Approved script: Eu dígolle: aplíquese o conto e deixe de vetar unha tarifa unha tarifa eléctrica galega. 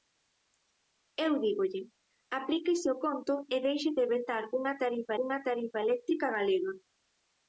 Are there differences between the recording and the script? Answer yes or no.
no